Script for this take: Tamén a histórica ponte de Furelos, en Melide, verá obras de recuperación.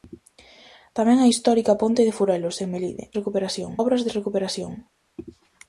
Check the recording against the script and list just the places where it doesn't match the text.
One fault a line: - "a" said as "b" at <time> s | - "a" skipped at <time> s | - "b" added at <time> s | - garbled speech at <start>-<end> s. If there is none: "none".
- "verá" said as "recuperación" at 3.2 s